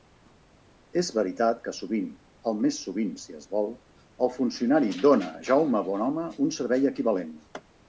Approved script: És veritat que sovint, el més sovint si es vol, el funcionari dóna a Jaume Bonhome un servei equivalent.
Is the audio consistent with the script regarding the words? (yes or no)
yes